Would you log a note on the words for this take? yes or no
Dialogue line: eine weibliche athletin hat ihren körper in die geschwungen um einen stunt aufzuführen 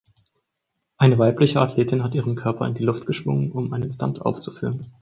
yes